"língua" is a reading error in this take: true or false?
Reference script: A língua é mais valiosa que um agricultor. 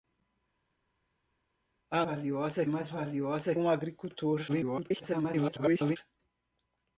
true